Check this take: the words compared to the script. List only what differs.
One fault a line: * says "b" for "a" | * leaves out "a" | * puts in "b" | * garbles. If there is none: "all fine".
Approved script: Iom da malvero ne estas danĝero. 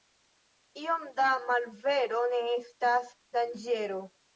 all fine